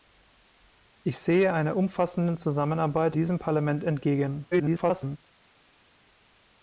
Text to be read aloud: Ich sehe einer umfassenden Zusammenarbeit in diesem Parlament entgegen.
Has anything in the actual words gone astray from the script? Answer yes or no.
yes